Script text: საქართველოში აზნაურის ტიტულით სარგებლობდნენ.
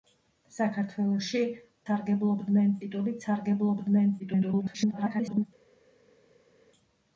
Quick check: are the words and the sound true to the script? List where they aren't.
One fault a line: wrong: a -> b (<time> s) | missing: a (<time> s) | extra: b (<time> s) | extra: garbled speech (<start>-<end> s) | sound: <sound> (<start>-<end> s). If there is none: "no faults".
wrong: აზნაურის -> სარგებლობდნენ (1.9 s)
extra: garbled speech (4.2-5.5 s)